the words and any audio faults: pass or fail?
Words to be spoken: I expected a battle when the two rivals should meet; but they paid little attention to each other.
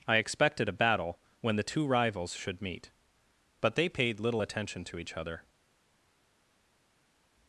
pass